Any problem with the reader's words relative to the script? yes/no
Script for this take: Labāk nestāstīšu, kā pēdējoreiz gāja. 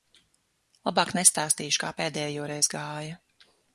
no